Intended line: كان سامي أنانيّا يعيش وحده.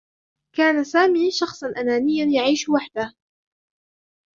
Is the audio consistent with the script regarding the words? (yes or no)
no